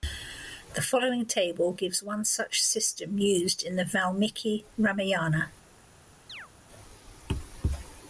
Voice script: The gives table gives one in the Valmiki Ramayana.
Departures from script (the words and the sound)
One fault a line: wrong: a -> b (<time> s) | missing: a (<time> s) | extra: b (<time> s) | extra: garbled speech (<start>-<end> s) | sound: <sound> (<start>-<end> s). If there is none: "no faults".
wrong: gives -> following (0.8 s)
extra: such system used (2.2 s)
sound: chirp (6.3-6.5 s)